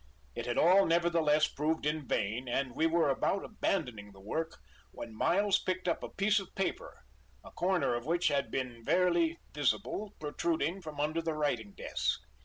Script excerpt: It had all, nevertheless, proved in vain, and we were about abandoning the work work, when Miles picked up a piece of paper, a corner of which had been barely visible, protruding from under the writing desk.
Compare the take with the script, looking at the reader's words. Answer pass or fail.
fail